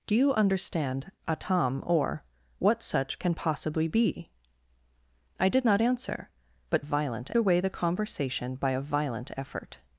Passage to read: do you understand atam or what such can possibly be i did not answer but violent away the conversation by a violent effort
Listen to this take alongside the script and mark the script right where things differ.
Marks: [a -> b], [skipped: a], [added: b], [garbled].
do you understand atam or what such can possibly be i did not answer but violent away the conversation by a violent effort